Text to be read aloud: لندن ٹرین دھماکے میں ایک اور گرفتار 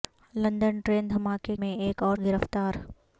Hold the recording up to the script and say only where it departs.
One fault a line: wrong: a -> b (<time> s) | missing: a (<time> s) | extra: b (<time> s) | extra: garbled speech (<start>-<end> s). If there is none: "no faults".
no faults